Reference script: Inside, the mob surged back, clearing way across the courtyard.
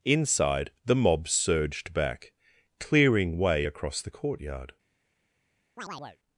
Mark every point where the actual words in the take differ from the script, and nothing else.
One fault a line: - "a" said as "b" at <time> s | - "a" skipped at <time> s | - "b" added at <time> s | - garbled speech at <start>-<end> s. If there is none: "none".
none